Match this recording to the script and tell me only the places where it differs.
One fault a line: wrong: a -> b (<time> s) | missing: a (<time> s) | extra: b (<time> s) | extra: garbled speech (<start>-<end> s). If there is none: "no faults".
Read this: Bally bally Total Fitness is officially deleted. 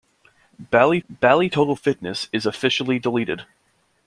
no faults